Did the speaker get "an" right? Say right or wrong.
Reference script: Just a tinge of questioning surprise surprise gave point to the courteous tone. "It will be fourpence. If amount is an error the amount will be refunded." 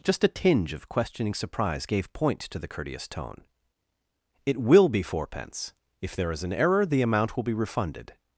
right